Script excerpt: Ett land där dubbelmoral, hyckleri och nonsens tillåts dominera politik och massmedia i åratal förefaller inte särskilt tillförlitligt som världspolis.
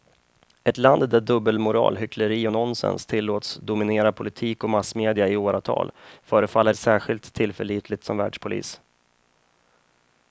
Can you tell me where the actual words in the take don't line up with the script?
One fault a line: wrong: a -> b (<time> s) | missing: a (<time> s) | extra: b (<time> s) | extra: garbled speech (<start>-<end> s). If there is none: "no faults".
missing: inte (6.8 s)